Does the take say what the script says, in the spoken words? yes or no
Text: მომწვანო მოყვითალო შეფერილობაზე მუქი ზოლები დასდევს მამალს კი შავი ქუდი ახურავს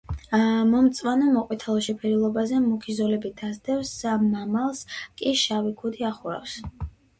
yes